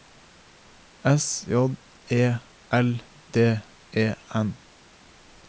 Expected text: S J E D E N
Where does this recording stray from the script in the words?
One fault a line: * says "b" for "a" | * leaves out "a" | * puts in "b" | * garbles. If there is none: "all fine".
* puts in "L"